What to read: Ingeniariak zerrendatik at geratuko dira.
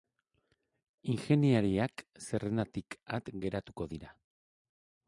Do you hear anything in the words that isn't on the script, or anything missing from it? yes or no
no